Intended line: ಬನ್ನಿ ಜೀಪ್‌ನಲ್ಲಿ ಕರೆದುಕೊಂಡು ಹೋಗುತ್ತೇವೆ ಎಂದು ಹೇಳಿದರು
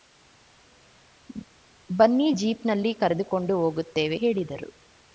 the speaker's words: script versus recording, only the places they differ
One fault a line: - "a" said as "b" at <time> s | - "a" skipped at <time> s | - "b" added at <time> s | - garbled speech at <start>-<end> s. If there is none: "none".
- "ಎಂದು" skipped at 4.2 s